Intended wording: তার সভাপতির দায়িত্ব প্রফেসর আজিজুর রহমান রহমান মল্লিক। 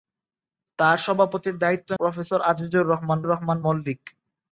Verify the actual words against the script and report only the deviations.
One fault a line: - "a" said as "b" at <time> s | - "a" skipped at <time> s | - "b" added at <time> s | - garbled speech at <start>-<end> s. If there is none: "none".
none